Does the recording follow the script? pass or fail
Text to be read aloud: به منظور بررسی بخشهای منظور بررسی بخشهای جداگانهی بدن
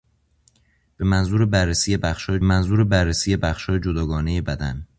pass